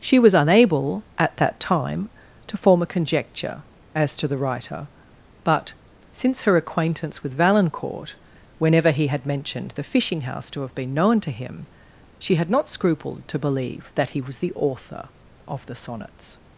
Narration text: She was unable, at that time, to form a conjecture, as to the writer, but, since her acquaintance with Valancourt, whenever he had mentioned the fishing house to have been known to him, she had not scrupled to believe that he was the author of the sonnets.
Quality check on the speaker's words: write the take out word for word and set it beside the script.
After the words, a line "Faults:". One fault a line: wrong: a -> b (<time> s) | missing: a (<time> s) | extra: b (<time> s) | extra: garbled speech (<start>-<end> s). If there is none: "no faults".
She was unable, at that time, to form a conjecture, as to the writer, but, since her acquaintance with Valancourt, whenever he had mentioned the fishing house to have been known to him, she had not scrupled to believe that he was the author of the sonnets.
Faults:
no faults